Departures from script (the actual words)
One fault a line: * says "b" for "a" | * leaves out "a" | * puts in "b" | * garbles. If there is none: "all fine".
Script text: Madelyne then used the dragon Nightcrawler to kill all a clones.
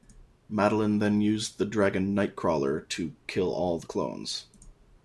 * says "the" for "a"